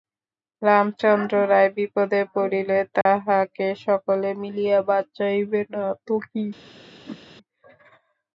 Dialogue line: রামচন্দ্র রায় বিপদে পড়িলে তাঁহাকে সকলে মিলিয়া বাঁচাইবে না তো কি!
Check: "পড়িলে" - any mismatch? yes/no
no